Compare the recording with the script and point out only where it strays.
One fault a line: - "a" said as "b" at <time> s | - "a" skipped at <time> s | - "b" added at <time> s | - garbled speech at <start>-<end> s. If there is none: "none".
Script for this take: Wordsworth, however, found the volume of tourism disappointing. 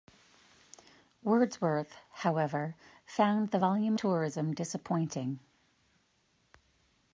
- "of" skipped at 4.0 s